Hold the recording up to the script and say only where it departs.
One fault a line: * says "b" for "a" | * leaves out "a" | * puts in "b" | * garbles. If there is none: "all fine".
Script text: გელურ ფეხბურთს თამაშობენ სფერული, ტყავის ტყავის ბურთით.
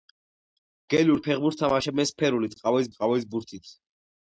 all fine